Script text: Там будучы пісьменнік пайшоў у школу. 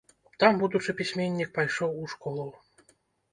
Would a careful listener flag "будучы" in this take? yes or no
no